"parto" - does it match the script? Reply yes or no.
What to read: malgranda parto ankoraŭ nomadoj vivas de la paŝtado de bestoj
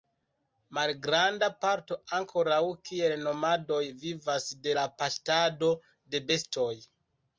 yes